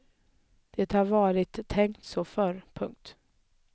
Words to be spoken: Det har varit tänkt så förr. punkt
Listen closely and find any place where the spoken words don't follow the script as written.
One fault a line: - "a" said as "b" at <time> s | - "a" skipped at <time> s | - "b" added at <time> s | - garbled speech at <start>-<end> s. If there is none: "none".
none